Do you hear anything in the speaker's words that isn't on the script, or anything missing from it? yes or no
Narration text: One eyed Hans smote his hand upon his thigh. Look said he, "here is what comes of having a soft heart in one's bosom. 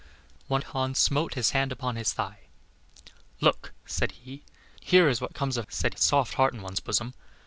yes